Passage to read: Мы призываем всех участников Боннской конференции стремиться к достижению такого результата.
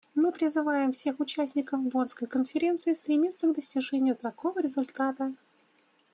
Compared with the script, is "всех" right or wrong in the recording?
right